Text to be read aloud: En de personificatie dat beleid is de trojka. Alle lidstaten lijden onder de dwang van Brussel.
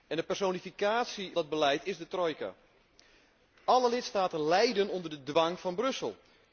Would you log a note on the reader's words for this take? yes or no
no